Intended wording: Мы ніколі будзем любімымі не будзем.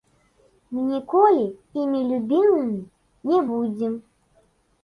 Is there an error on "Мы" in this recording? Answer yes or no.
no